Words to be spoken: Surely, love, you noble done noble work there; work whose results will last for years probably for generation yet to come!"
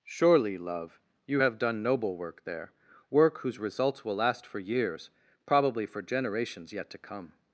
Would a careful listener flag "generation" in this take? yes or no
yes